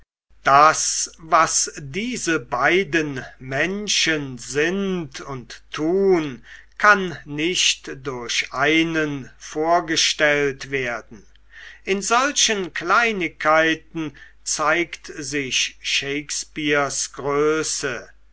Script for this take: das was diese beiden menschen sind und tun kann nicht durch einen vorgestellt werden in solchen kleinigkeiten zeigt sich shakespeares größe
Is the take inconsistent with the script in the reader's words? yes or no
no